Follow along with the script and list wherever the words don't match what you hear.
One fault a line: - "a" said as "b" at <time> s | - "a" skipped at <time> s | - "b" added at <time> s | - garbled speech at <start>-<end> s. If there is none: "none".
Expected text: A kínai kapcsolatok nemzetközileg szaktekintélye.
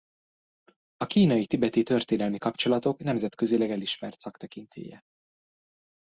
- "tibeti történelmi" added at 1.4 s
- "elismert" added at 3.7 s